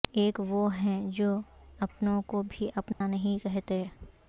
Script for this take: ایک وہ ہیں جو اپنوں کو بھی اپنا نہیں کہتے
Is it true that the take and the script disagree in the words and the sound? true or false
true